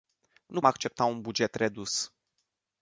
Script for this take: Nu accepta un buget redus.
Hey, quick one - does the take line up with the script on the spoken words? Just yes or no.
yes